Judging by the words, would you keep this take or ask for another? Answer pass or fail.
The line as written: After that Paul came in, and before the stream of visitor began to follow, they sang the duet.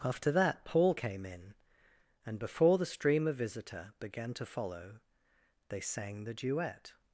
pass